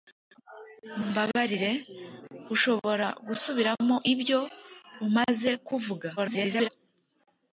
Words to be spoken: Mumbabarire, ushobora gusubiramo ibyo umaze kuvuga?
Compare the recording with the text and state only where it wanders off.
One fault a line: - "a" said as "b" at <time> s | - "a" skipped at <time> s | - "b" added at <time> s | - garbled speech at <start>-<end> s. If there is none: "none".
- garbled speech at 6.2-6.7 s